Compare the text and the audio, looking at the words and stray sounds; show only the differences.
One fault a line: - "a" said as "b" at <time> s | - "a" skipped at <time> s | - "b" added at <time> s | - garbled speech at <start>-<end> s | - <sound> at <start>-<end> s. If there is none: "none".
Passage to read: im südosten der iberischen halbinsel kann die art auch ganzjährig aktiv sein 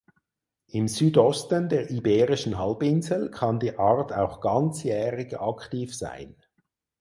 none